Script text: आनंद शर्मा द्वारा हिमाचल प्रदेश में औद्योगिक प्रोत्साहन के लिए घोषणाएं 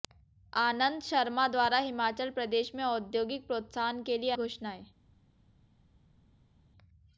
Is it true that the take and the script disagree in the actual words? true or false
false